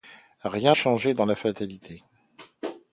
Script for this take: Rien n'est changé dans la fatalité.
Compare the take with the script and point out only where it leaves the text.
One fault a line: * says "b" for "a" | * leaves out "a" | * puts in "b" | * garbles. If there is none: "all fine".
* leaves out "n'est"